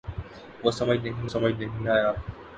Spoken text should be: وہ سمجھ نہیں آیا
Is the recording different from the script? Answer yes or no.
yes